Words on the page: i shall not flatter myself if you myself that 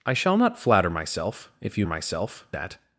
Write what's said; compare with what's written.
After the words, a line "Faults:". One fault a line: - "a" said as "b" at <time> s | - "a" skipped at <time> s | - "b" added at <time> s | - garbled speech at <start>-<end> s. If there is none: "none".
i shall not flatter myself if you myself that
Faults:
none